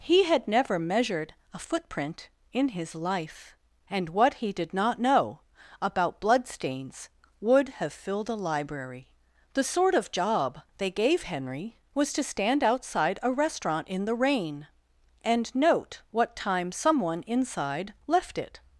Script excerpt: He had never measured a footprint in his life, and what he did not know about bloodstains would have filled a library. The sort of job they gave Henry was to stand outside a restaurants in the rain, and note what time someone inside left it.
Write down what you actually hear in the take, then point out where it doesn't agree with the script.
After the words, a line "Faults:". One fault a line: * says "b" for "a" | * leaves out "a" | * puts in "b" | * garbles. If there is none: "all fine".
He had never measured a footprint in his life, and what he did not know about bloodstains would have filled a library. The sort of job they gave Henry was to stand outside a restaurant in the rain, and note what time someone inside left it.
Faults:
* says "restaurant" for "restaurants"